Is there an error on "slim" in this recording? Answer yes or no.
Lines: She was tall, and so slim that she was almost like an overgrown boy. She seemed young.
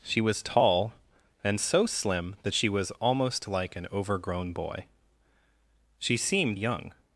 no